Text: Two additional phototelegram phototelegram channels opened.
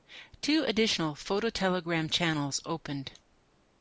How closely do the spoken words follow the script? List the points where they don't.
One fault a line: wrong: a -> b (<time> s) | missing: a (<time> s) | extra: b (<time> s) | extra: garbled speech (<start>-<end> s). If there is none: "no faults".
missing: phototelegram (2.1 s)